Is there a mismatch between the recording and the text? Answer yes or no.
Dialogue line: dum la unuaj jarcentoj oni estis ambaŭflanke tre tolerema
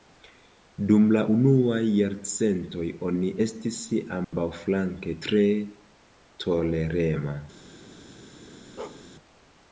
no